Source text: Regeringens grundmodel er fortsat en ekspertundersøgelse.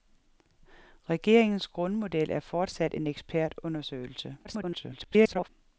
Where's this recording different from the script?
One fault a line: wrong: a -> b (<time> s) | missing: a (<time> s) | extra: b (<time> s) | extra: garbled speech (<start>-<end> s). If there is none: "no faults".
extra: garbled speech (4.4-5.5 s)